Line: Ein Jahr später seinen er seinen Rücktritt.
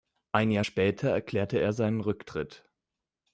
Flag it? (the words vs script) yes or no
yes